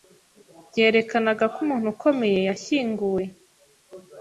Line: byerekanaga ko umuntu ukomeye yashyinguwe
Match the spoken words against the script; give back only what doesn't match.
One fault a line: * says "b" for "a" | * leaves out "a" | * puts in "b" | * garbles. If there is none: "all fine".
all fine